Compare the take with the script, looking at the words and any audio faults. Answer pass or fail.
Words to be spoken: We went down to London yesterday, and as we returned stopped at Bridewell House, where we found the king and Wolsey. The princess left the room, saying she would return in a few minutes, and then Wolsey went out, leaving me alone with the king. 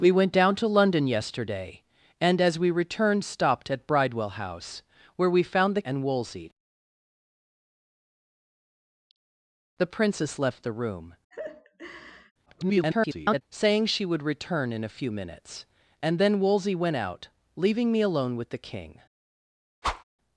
fail